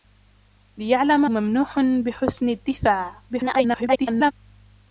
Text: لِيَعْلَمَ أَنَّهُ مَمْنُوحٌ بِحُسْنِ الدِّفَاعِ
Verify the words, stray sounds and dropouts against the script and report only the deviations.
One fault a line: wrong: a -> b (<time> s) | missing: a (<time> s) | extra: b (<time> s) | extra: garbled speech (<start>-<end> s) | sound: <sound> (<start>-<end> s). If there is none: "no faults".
missing: أَنَّهُ (1.2 s)
extra: garbled speech (3.3-4.3 s)